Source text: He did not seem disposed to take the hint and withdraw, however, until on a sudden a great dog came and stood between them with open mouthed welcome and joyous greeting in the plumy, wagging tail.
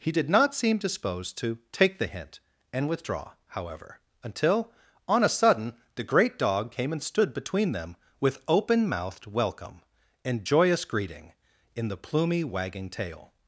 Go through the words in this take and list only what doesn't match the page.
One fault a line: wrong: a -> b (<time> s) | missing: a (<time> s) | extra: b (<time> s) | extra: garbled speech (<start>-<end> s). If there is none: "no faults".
wrong: a -> the (5.9 s)